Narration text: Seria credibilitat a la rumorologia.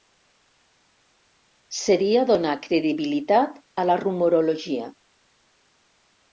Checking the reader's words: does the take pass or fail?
fail